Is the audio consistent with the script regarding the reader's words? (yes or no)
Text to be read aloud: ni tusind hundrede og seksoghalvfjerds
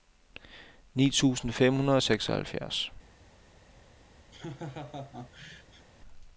no